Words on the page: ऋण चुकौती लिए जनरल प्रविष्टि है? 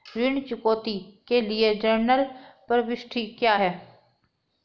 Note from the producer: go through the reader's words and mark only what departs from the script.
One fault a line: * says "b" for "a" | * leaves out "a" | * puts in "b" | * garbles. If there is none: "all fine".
* puts in "के"
* puts in "क्या"